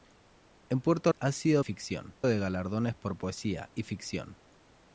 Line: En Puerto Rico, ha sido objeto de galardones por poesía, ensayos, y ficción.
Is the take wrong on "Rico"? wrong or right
wrong